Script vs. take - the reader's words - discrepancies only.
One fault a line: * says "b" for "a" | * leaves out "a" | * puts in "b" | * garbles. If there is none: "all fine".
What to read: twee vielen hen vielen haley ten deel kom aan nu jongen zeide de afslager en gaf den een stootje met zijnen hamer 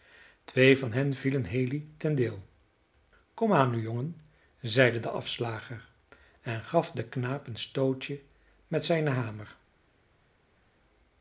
* says "van" for "vielen"
* puts in "knaap"